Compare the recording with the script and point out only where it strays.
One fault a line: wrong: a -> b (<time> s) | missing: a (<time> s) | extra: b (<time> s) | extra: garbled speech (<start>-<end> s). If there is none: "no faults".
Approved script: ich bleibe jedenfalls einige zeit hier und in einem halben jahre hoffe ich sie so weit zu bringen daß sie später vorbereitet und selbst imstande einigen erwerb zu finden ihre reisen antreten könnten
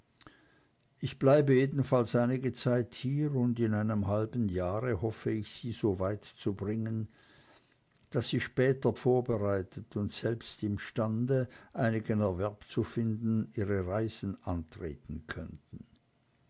no faults